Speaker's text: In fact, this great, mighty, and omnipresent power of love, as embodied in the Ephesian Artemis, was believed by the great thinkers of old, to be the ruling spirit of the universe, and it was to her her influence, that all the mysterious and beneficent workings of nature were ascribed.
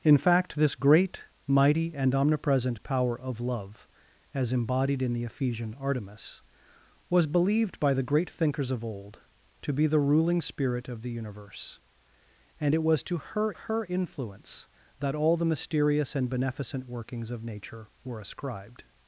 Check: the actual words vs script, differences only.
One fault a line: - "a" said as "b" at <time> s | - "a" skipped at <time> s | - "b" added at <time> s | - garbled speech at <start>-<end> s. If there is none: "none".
none